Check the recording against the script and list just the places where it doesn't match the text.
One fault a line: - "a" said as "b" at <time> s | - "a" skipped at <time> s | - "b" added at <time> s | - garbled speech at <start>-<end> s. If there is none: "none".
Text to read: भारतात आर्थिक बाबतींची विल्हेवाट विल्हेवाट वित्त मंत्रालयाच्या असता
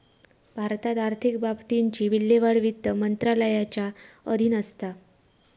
- "विल्हेवाट" skipped at 2.6 s
- "अधीन" added at 4.3 s